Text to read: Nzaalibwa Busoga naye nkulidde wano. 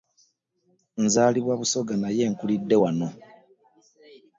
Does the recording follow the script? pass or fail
pass